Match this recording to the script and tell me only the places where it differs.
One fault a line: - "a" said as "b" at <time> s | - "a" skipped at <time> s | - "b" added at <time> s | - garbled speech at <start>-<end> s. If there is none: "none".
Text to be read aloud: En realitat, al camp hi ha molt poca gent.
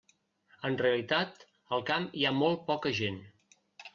none